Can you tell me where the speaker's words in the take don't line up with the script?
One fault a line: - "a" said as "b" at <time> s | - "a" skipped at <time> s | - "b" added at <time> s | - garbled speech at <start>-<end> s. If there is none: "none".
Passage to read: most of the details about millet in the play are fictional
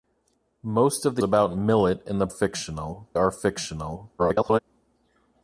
- "details" skipped at 1.2 s
- "play" said as "fictional" at 2.3 s
- garbled speech at 4.2-4.6 s